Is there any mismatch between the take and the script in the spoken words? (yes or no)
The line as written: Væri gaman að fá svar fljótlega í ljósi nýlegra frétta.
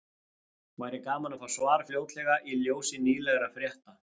no